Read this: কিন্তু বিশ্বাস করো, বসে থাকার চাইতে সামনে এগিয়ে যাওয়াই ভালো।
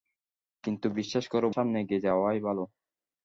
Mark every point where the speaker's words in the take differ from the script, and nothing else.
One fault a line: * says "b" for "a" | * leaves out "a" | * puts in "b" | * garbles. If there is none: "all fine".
* leaves out "বসে থাকার চাইতে"